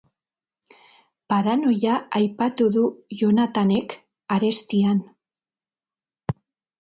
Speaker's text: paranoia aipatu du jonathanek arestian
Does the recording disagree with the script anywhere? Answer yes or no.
no